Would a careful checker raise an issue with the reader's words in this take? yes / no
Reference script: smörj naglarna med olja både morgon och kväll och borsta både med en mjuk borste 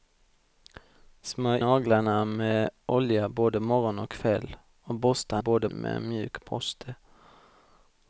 no